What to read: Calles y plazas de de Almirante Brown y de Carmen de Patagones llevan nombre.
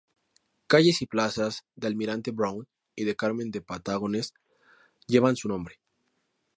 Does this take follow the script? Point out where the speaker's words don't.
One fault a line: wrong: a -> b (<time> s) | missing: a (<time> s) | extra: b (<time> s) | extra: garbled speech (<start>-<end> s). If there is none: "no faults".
missing: de (1.9 s)
extra: su (5.4 s)